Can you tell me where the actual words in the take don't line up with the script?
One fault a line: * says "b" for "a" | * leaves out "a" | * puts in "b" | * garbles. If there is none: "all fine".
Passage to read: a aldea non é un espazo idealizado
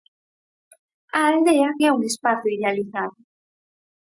* leaves out "non"